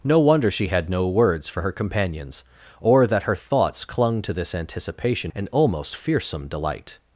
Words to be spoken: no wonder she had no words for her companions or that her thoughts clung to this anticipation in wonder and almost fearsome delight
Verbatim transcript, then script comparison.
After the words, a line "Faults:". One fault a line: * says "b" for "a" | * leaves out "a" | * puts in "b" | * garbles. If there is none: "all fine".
no wonder she had no words for her companions or that her thoughts clung to this anticipation and almost fearsome delight
Faults:
* leaves out "in wonder"